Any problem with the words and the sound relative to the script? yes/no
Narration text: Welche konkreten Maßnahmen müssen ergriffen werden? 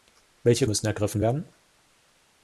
yes